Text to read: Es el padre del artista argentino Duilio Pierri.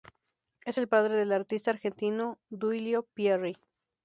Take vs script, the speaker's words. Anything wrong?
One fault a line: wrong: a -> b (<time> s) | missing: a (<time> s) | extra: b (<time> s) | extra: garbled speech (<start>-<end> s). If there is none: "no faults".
no faults